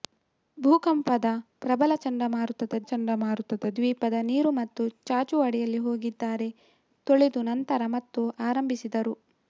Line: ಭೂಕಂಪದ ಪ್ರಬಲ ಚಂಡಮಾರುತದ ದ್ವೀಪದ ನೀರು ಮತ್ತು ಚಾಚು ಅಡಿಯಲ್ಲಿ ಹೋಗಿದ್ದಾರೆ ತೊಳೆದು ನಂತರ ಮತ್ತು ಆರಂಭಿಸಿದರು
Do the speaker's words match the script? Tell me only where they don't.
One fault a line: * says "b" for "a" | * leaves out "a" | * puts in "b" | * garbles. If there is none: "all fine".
* puts in "ಚಂಡಮಾರುತದ"